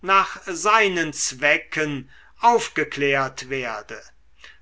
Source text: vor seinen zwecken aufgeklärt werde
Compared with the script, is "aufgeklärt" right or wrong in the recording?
right